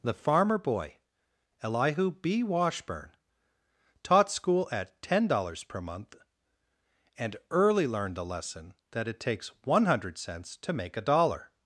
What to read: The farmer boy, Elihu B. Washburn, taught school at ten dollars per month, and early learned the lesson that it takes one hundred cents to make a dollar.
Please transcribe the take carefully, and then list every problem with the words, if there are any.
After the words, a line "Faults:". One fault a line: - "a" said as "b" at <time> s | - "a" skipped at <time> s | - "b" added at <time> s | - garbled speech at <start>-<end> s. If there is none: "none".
The farmer boy, Elihu B. Washburn, taught school at ten dollars per month, and early learned the lesson that it takes one hundred cents to make a dollar.
Faults:
none